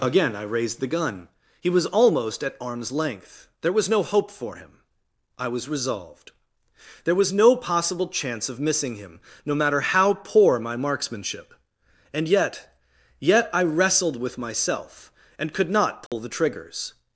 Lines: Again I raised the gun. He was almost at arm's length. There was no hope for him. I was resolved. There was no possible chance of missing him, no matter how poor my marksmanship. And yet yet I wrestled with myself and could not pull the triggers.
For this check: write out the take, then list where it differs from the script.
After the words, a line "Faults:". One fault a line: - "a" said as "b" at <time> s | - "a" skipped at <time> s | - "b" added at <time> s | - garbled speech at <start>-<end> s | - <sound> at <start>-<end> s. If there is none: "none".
Again I raised the gun. He was almost at arm's length. There was no hope for him. I was resolved. There was no possible chance of missing him, no matter how poor my marksmanship. And yet yet I wrestled with myself and could not pull the triggers.
Faults:
- dropout at 16.1-16.1 s